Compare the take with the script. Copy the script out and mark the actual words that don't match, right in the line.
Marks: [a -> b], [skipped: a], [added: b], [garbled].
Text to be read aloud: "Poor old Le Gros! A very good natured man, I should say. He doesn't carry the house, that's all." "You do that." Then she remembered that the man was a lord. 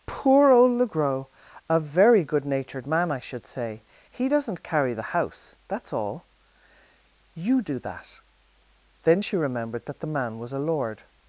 "Poor old Le Gros! A very good natured man, I should say. He doesn't carry the house, that's all." "You do that." Then she remembered that the man was a lord.